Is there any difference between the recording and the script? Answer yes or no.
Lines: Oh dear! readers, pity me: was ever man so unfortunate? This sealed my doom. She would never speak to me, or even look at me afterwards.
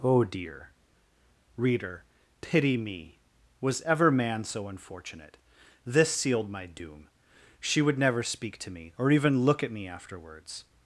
yes